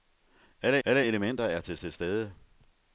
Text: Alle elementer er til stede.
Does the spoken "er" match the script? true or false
true